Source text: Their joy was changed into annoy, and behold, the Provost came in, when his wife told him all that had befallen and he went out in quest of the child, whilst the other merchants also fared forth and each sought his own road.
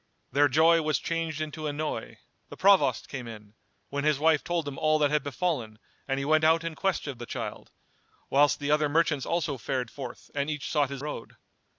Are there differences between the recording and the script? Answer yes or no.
yes